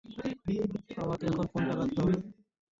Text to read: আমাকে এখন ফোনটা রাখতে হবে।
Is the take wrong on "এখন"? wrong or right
right